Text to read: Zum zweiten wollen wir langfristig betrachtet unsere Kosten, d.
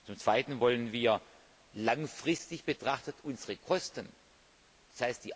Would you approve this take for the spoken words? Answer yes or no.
yes